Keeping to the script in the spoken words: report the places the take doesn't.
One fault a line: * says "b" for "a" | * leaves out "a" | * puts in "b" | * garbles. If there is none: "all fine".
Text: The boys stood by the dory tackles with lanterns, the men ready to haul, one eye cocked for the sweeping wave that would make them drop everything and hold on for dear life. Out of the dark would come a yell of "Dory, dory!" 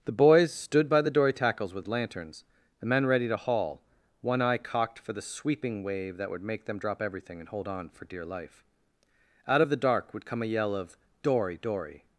all fine